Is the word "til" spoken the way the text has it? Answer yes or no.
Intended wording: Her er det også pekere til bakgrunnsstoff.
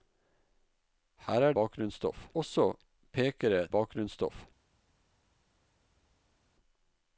no